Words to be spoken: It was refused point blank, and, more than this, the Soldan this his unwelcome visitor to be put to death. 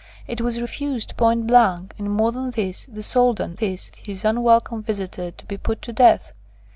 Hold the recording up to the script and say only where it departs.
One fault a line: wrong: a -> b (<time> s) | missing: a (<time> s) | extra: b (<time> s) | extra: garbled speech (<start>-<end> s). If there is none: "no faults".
no faults